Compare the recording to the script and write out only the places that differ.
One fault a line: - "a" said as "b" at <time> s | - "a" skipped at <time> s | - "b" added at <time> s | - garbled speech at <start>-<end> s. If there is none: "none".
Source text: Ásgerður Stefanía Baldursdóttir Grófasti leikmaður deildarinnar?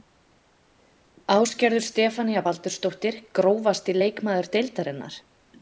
none